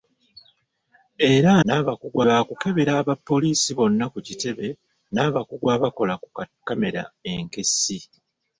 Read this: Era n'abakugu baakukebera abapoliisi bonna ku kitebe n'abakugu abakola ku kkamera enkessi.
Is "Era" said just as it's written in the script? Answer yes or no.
yes